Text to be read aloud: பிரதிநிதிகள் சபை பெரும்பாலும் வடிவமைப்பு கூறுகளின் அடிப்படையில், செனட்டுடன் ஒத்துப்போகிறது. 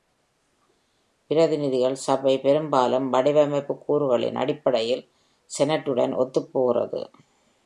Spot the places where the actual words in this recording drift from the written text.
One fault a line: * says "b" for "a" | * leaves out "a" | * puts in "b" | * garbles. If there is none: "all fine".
all fine